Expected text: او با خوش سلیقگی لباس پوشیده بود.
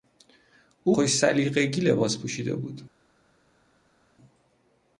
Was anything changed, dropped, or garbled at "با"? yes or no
yes